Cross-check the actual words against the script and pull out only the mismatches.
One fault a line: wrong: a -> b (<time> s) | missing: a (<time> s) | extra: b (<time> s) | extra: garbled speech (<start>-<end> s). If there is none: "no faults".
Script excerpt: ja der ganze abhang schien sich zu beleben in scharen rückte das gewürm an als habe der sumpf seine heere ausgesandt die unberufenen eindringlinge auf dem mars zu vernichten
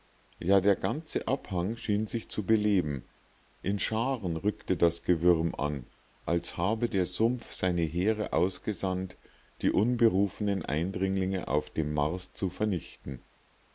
no faults